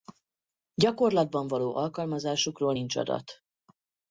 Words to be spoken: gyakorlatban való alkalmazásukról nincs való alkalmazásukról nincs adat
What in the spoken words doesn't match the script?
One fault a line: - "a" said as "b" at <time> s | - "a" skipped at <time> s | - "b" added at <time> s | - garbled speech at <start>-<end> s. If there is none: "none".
- "való alkalmazásukról nincs" skipped at 3.0 s